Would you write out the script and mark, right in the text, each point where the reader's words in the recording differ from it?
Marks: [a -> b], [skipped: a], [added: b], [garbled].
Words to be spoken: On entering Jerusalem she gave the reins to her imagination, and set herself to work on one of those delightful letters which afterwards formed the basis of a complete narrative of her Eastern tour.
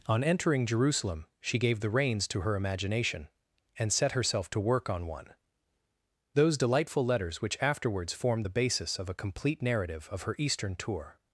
On entering Jerusalem she gave the reins to her imagination, and set herself to work on one [skipped: of] those delightful letters which afterwards formed the basis of a complete narrative of her Eastern tour.